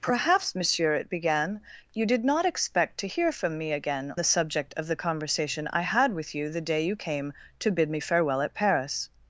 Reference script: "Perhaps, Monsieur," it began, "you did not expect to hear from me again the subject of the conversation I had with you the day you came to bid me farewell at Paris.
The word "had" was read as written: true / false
true